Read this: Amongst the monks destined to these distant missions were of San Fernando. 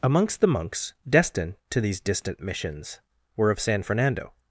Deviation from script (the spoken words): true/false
false